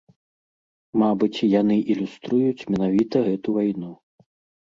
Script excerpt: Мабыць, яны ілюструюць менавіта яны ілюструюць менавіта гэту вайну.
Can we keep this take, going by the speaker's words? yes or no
no